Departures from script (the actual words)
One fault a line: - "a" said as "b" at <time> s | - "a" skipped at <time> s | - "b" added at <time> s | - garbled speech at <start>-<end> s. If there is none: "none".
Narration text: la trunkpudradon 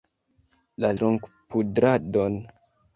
none